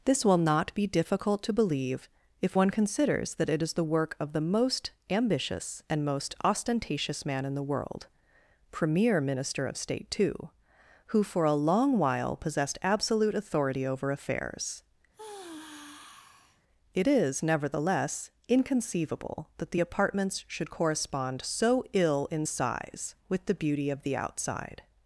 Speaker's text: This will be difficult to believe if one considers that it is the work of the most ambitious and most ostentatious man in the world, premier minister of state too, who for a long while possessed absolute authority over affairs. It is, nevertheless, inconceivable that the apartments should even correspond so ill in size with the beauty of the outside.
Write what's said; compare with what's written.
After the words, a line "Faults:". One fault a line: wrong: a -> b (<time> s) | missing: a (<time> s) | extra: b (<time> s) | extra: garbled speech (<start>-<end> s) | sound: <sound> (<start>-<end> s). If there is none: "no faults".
This will not be difficult to believe if one considers that it is the work of the most ambitious and most ostentatious man in the world, premier minister of state too, who for a long while possessed absolute authority over affairs. It is, nevertheless, inconceivable that the apartments should correspond so ill in size with the beauty of the outside.
Faults:
extra: not (0.4 s)
sound: sigh (15.1-16.6 s)
missing: even (20.7 s)